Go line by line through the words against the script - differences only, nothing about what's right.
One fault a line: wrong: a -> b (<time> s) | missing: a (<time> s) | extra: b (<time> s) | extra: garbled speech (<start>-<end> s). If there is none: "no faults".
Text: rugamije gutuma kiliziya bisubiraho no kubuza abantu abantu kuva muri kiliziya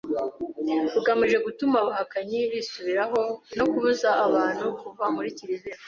wrong: kiliziya -> abahakanyi (1.8 s)
missing: abantu (4.7 s)